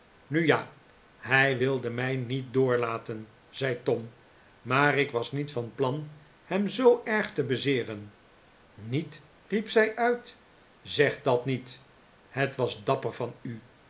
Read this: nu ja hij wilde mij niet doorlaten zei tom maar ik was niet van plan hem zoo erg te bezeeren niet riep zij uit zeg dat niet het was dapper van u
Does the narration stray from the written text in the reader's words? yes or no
no